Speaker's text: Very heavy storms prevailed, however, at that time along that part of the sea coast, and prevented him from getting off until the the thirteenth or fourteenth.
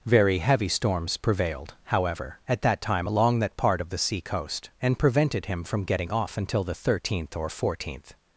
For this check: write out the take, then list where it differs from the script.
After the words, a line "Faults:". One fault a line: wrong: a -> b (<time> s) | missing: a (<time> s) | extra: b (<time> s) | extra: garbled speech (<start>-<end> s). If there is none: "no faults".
Very heavy storms prevailed, however, at that time along that part of the sea coast, and prevented him from getting off until the thirteenth or fourteenth.
Faults:
missing: the (6.8 s)